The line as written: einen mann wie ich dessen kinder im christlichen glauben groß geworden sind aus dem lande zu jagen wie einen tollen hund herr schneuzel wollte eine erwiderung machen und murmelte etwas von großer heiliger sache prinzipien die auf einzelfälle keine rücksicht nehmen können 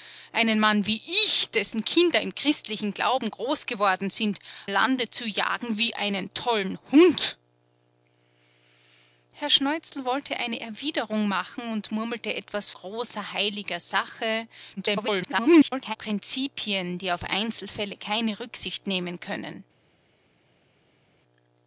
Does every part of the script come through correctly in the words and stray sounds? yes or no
no